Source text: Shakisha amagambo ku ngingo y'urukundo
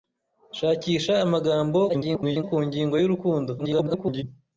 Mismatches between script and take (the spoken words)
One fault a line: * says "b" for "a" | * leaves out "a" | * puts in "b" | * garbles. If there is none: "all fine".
* garbles
* garbles